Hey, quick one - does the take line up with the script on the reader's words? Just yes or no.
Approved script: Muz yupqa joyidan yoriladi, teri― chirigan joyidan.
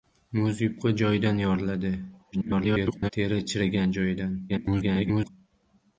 no